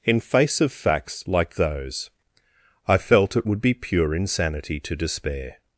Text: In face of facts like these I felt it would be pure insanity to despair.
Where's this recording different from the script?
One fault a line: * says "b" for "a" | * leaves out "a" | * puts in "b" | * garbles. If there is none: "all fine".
* says "those" for "these"